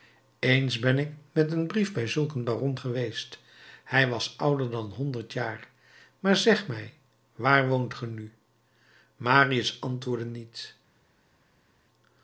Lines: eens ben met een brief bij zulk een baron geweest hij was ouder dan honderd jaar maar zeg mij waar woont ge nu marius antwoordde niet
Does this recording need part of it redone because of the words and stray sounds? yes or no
yes